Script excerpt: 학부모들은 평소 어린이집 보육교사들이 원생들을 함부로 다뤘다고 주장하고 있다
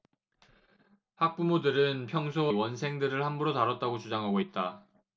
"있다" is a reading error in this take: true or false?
false